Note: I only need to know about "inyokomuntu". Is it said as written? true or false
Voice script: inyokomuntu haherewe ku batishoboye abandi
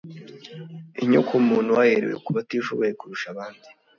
true